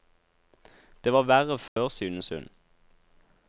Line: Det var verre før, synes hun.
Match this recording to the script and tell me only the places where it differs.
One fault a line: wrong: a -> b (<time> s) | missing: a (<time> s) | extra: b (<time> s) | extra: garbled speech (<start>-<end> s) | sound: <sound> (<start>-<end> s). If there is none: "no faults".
sound: dropout (1.7-1.8 s)